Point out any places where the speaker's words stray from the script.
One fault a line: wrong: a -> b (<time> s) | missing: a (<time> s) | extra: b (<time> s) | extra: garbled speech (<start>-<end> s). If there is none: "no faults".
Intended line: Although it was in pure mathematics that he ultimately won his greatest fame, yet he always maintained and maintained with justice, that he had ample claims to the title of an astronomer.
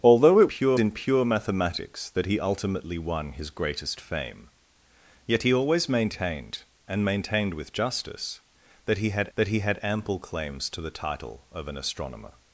wrong: was -> pure (0.4 s)
extra: that he had (9.3 s)